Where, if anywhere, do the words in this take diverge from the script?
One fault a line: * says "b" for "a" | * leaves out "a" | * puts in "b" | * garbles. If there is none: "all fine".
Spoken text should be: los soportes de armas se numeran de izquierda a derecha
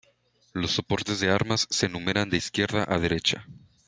all fine